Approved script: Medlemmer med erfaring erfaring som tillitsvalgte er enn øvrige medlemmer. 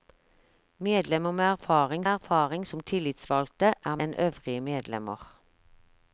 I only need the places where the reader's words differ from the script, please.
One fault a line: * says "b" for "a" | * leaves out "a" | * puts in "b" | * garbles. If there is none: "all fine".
all fine